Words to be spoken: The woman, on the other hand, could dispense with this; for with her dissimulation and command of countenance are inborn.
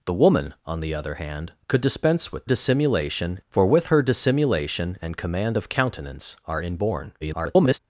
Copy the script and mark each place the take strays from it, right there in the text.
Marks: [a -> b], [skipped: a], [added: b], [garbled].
The woman, on the other hand, could dispense with [this; -> dissimulation] for with her dissimulation and command of countenance are inborn. [garbled]